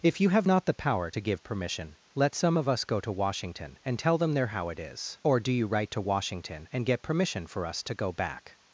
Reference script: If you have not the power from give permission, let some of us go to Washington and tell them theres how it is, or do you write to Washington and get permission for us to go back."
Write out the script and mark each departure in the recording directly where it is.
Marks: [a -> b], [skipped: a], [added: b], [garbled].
If you have not the power [from -> to] give permission, let some of us go to Washington and tell them [theres -> there] how it is, or do you write to Washington and get permission for us to go back."